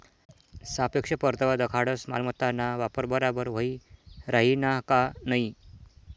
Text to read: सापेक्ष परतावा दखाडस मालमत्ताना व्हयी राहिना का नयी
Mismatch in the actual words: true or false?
true